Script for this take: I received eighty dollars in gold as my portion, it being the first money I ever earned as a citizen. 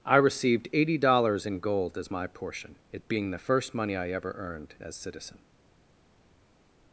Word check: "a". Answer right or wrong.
wrong